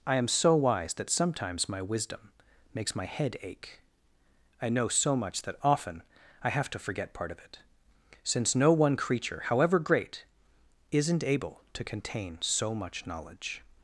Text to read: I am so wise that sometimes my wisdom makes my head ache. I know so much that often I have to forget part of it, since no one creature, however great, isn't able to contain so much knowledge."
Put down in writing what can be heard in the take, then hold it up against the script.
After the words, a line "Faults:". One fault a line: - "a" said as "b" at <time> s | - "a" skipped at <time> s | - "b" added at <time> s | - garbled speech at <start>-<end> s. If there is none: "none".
I am so wise that sometimes my wisdom makes my head ache. I know so much that often I have to forget part of it, since no one creature, however great, isn't able to contain so much knowledge."
Faults:
none